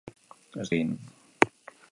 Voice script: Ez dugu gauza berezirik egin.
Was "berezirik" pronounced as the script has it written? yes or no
no